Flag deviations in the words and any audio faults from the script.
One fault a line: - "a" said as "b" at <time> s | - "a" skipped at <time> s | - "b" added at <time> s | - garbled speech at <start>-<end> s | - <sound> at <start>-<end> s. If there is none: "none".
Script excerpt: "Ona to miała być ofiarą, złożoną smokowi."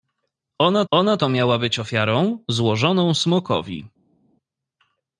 - "ona" added at 0.9 s